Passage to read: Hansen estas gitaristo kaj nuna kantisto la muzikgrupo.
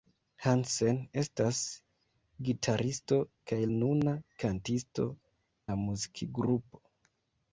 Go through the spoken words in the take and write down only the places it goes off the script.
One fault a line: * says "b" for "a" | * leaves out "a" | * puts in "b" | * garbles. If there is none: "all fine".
all fine